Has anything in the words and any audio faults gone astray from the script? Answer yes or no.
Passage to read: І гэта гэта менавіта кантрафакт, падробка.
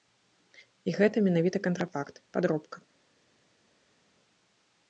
yes